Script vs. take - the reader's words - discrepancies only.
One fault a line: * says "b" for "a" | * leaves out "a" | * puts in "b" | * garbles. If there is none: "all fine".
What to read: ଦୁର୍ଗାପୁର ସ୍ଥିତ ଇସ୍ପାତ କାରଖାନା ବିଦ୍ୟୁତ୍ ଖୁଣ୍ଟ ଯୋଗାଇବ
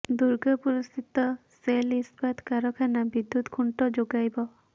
* puts in "ସେଲ୍"